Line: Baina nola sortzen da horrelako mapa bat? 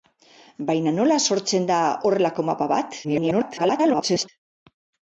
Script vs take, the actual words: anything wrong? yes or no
yes